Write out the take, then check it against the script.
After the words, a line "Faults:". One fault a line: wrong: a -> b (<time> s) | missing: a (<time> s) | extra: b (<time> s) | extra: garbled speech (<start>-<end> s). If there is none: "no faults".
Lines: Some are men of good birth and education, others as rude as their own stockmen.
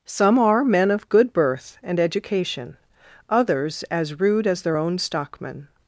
Some are men of good birth and education, others as rude as their own stockmen.
Faults:
no faults